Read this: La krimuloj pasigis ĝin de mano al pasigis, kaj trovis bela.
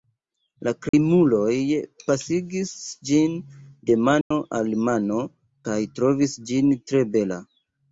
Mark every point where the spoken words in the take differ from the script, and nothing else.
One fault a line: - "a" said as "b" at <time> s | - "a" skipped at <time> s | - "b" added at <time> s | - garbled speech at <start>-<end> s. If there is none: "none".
- "pasigis" said as "mano" at 4.9 s
- "ĝin tre" added at 6.5 s